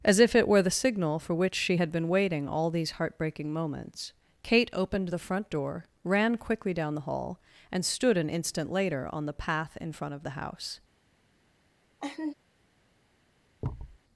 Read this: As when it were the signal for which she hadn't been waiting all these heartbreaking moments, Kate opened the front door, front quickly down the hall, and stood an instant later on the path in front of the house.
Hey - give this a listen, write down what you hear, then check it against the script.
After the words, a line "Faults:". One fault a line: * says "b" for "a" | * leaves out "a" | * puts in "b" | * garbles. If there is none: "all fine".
As if it were the signal for which she had been waiting all these heartbreaking moments, Kate opened the front door, ran quickly down the hall, and stood an instant later on the path in front of the house.
Faults:
* says "if" for "when"
* says "had" for "hadn't"
* says "ran" for "front"